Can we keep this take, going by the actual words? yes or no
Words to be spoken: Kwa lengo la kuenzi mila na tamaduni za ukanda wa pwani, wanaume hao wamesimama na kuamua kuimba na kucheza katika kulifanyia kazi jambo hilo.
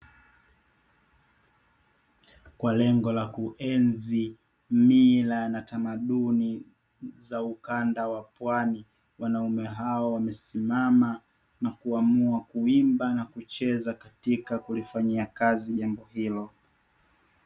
yes